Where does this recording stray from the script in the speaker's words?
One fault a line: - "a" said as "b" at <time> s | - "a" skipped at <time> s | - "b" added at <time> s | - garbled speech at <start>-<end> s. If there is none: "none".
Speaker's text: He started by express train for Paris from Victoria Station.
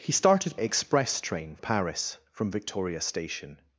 - "by" skipped at 0.6 s
- "for" skipped at 1.6 s